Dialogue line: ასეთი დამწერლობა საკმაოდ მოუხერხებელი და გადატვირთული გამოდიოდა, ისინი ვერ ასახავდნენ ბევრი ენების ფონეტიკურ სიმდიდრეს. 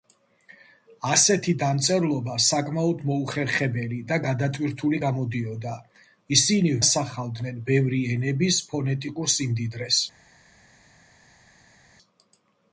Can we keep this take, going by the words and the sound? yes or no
no